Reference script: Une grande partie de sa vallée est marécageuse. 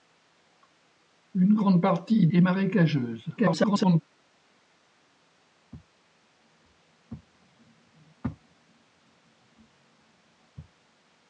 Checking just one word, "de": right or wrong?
wrong